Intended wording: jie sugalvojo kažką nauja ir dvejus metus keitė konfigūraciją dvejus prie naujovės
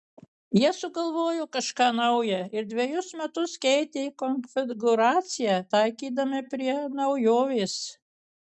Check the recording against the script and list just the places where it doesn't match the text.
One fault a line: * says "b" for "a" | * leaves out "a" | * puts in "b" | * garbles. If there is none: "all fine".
* says "taikydami" for "dvejus"